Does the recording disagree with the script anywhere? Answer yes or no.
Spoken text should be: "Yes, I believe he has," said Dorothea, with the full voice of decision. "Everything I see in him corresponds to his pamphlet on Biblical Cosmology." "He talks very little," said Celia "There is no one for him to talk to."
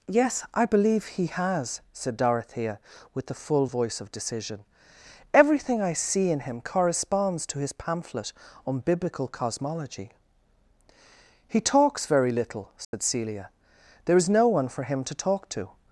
no